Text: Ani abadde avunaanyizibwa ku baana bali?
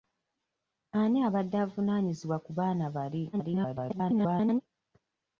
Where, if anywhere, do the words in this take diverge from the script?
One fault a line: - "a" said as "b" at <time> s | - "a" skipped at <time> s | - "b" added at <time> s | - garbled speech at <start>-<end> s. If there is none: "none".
- garbled speech at 3.3-4.6 s